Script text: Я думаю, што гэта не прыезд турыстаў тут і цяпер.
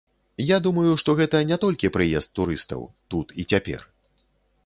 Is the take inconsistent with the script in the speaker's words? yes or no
yes